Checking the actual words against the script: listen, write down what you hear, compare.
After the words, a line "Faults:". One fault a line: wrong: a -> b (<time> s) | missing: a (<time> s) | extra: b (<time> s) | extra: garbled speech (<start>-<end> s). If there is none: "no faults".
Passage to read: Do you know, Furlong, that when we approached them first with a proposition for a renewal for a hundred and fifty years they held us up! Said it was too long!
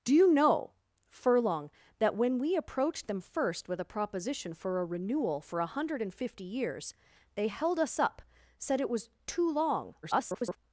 Do you know, Furlong, that when we approached them first with a proposition for a renewal for a hundred and fifty years they held us up! Said it was too long! [garbled]
Faults:
extra: garbled speech (10.0-10.6 s)